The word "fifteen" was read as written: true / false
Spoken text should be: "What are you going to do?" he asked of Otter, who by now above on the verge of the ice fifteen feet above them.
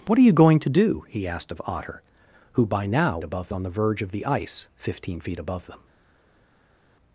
true